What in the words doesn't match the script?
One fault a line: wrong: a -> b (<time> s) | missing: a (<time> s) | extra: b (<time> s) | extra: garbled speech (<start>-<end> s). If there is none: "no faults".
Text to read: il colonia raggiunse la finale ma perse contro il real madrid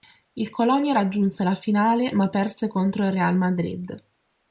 no faults